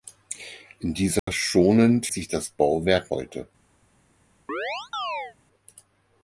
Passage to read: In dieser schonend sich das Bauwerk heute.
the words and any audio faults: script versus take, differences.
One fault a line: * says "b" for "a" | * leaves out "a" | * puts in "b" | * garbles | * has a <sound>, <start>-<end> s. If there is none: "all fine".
* has a dropout, 1.2-1.3 s
* has a chirp, 4.5-5.4 s